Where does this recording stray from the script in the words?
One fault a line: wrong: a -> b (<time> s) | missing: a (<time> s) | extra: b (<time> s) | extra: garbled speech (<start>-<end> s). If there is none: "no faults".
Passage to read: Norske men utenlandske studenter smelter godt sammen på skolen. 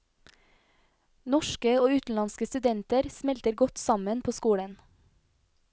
wrong: men -> og (1.8 s)